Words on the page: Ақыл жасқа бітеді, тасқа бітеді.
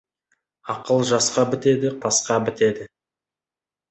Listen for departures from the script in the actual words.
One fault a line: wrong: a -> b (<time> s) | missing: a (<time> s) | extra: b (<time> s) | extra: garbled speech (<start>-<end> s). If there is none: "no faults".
no faults